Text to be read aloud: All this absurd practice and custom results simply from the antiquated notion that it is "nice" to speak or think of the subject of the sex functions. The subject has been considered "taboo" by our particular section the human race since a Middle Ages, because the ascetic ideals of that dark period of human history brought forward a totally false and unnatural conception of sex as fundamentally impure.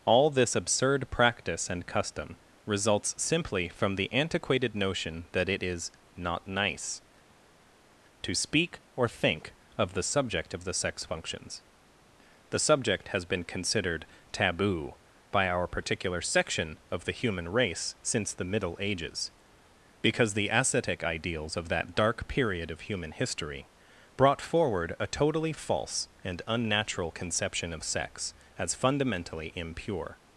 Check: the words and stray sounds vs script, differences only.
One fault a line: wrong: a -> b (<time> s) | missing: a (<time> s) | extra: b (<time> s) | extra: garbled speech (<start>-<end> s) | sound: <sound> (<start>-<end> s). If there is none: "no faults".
extra: not (6.2 s)
extra: of (16.9 s)
wrong: a -> the (18.3 s)